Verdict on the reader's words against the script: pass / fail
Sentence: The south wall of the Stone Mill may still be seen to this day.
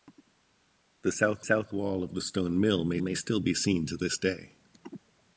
fail